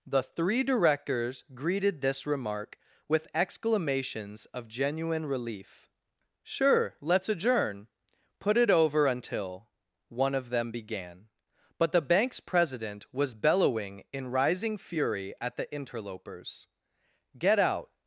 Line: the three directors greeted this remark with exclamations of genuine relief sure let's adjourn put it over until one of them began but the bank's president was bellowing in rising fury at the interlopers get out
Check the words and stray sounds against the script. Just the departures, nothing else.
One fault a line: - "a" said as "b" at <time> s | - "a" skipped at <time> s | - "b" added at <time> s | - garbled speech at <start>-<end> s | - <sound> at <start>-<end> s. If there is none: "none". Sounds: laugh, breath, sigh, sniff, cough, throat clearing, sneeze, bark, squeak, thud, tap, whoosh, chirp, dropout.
none